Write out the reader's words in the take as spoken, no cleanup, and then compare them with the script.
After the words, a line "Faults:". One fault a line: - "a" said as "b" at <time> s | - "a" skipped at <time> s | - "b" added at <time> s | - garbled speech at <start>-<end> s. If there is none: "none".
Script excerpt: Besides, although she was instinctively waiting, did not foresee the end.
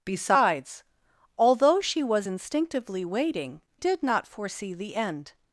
Besides, although she was instinctively waiting, did not foresee the end.
Faults:
none